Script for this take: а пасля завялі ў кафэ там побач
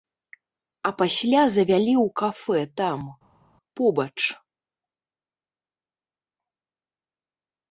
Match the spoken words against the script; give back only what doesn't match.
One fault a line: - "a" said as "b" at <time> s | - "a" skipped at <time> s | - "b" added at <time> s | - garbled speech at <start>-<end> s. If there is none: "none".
none